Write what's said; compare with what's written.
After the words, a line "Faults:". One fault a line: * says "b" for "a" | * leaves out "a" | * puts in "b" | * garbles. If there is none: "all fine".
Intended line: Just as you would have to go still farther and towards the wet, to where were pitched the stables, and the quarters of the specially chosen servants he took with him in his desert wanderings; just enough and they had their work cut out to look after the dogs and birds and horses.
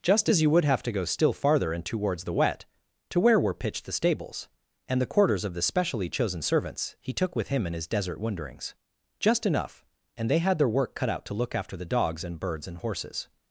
Just as you would have to go still farther and towards the wet, to where were pitched the stables, and the quarters of the specially chosen servants he took with him in his desert wanderings; just enough and they had their work cut out to look after the dogs and birds and horses.
Faults:
all fine